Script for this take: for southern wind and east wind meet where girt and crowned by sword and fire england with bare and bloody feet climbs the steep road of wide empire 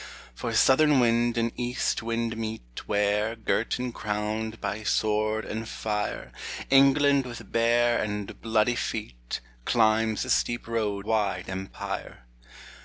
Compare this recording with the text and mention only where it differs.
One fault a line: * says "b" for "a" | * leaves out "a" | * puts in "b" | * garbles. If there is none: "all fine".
* leaves out "of"